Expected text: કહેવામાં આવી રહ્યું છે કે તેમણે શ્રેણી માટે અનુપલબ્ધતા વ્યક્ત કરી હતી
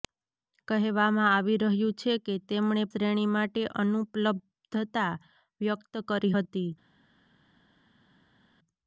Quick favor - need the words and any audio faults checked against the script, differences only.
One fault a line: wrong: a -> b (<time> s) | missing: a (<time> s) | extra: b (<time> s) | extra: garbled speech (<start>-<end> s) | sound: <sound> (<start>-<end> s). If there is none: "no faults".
no faults